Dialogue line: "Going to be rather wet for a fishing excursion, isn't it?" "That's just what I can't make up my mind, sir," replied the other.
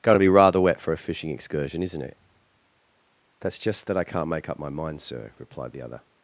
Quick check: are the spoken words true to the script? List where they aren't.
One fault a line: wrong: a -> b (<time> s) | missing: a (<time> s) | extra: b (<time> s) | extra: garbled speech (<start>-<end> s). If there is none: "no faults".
wrong: what -> that (3.9 s)